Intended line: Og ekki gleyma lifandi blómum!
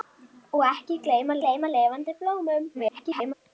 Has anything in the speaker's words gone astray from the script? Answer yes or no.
yes